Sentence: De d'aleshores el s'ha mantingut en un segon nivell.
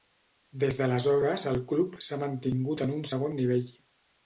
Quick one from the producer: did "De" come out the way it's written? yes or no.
no